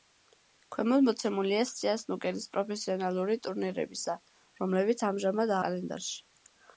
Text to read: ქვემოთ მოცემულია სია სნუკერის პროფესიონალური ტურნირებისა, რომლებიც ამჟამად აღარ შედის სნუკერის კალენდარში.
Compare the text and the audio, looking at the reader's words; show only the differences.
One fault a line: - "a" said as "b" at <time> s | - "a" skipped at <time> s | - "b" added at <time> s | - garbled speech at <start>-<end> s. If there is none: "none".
- "აღარ შედის სნუკერის" skipped at 5.6 s